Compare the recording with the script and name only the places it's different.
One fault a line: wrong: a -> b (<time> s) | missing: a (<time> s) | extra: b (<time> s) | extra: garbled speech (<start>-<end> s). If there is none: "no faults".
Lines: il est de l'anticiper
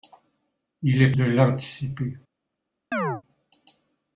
no faults